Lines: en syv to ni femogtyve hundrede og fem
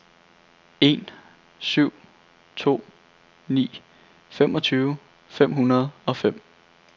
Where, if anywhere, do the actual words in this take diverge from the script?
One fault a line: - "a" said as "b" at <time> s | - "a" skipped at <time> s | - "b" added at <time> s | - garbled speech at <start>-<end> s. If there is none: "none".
- "fem" added at 5.3 s